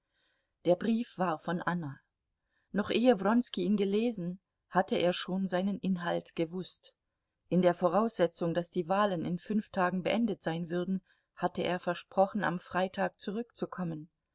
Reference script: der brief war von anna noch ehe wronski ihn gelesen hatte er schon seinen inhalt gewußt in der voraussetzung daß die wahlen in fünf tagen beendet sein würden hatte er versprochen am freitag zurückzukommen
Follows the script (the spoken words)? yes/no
yes